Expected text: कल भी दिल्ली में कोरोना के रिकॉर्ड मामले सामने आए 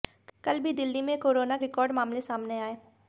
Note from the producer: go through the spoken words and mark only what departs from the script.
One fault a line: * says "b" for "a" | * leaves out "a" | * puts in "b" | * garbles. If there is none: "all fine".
* leaves out "के"